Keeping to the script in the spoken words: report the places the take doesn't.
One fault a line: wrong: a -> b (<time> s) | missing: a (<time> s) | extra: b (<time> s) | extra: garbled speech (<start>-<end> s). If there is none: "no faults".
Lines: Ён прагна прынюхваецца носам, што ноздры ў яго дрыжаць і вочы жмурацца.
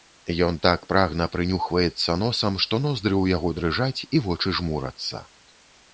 extra: так (0.7 s)